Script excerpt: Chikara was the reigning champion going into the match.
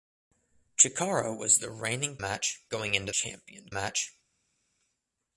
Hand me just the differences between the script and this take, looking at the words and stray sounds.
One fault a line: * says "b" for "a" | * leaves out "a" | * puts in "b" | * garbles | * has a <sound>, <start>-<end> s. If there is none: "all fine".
* says "match" for "champion"
* says "champion" for "the"